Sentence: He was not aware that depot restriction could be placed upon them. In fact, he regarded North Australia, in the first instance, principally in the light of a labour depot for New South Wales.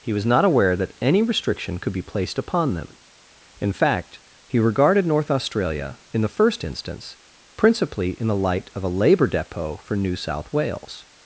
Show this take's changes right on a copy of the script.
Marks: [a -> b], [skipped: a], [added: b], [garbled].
He was not aware that [depot -> any] restriction could be placed upon them. In fact, he regarded North Australia, in the first instance, principally in the light of a labour depot for New South Wales.